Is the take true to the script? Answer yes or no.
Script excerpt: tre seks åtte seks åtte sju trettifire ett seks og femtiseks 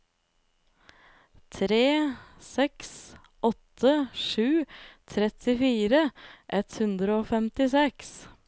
no